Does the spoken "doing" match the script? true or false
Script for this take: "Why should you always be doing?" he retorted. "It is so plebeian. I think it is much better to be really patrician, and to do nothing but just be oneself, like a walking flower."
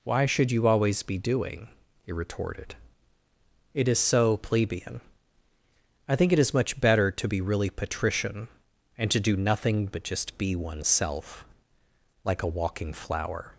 true